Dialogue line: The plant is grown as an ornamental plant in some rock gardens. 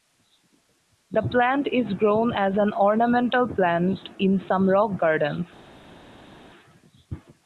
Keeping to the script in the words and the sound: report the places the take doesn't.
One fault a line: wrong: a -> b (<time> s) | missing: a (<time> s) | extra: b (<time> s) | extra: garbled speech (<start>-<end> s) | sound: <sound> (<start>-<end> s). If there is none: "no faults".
no faults